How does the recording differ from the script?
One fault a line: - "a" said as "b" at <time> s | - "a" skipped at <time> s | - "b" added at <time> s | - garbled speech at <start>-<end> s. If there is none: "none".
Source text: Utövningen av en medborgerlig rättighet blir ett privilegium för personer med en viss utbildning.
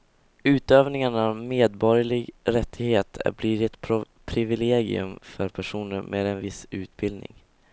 none